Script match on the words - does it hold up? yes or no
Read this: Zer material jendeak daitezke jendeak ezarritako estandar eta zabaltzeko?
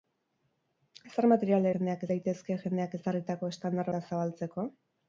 yes